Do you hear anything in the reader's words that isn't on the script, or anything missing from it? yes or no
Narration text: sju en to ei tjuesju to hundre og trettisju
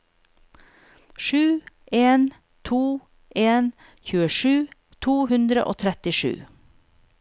yes